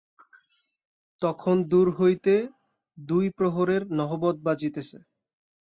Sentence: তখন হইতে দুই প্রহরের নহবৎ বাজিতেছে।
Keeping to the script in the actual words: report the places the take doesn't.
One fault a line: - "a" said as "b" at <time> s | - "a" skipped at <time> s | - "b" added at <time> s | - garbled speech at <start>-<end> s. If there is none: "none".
- "দূর" added at 1.7 s